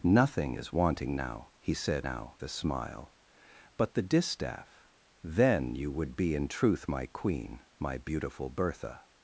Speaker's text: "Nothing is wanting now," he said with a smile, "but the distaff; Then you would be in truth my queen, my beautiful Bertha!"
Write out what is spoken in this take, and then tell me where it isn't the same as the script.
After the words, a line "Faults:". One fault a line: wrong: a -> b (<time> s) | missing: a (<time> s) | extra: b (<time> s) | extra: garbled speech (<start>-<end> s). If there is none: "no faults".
"Nothing is wanting now," he said now a smile, "but the distaff; Then you would be in truth my queen, my beautiful Bertha!"
Faults:
wrong: with -> now (2.0 s)